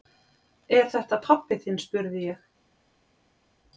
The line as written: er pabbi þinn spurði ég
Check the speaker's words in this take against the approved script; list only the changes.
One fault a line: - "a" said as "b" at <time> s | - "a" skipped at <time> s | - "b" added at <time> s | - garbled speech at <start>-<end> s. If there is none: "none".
- "þetta" added at 0.9 s